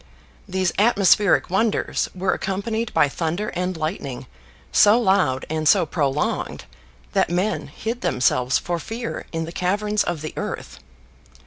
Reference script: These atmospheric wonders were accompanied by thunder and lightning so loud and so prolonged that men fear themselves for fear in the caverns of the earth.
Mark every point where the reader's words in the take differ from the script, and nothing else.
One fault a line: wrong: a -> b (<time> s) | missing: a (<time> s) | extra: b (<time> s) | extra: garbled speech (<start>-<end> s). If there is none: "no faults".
wrong: fear -> hid (7.7 s)